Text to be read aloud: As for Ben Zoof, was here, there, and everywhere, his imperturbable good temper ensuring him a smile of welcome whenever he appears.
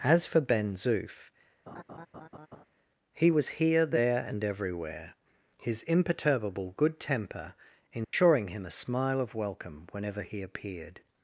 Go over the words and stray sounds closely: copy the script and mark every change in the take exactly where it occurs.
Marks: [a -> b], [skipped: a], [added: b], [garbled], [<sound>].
As for Ben Zoof, [laugh] [added: he] was here, there, and everywhere, his imperturbable good temper ensuring [dropout] him a smile of welcome whenever he [appears. -> appeared]